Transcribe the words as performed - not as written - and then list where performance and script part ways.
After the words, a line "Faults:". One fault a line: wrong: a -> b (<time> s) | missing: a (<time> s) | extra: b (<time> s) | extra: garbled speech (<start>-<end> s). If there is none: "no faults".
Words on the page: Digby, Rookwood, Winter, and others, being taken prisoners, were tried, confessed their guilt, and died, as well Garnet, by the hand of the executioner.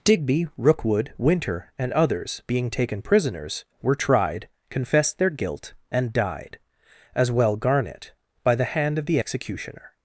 Digby, Rookwood, Winter, and others, being taken prisoners, were tried, confessed their guilt, and died, as well Garnet, by the hand of the executioner.
Faults:
no faults